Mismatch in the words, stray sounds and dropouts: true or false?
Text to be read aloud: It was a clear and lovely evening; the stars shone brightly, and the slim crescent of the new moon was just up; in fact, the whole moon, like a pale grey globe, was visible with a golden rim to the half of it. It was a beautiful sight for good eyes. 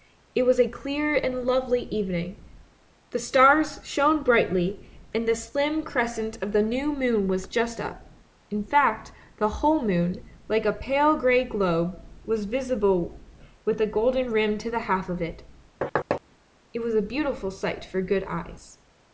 true